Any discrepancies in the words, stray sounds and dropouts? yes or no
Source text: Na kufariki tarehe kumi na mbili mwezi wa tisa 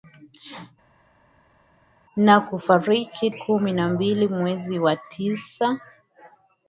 yes